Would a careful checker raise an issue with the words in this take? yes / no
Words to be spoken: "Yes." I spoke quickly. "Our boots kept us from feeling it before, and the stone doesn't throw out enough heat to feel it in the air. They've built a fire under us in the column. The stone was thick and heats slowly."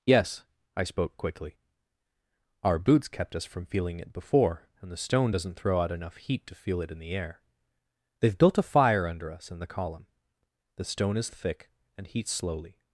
yes